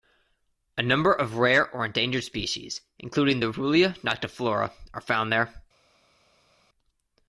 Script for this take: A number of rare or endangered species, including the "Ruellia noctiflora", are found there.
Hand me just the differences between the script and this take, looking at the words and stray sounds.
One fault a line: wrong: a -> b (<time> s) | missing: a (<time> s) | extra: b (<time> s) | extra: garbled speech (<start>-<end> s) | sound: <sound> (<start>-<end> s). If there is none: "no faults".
no faults